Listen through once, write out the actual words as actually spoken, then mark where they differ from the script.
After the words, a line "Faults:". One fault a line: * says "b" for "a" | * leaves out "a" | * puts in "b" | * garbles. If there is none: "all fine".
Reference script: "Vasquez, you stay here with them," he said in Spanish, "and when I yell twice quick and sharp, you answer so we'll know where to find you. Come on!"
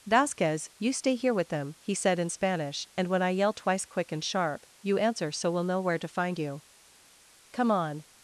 "Vasquez, you stay here with them," he said in Spanish, "and when I yell twice quick and sharp, you answer so we'll know where to find you. Come on!"
Faults:
all fine